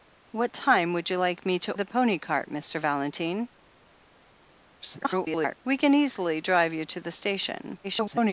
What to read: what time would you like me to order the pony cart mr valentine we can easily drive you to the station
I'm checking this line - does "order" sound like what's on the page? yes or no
no